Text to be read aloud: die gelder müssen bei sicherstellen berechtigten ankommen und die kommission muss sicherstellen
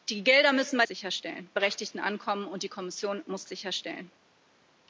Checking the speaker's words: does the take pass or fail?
pass